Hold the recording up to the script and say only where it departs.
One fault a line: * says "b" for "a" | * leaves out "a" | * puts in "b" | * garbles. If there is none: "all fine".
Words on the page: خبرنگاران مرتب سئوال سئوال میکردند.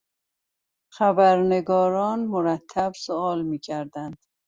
* leaves out "سئوال"